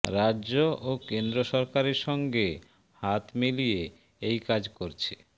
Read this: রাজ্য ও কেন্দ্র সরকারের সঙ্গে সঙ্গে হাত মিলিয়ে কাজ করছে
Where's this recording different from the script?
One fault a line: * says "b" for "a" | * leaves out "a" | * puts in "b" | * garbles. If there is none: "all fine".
* leaves out "সঙ্গে"
* puts in "এই"